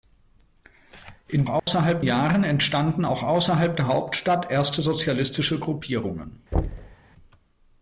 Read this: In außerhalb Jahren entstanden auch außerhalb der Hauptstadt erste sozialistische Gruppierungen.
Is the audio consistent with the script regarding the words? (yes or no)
yes